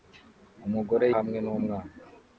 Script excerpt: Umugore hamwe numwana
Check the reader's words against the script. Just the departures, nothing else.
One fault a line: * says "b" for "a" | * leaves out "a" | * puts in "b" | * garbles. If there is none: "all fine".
all fine